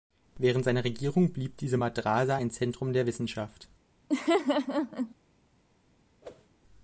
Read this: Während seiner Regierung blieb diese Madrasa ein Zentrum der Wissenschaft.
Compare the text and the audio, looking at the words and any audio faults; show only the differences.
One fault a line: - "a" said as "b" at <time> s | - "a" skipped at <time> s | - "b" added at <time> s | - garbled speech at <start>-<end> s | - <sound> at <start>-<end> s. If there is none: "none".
- laugh at 4.1-5.1 s
- whoosh at 6.2-6.5 s